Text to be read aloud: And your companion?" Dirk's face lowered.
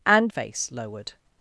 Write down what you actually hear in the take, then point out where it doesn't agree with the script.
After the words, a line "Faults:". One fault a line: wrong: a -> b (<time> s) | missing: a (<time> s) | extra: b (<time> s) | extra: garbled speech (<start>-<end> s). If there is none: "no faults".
And face lowered.
Faults:
missing: your companion Dirk's (0.3 s)